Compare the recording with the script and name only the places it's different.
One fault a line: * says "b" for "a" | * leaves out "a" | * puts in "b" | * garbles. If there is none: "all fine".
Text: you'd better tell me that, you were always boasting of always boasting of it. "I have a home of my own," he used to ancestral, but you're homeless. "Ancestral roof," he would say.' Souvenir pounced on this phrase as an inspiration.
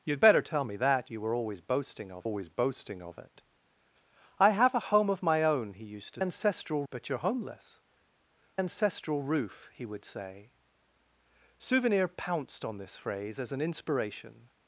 all fine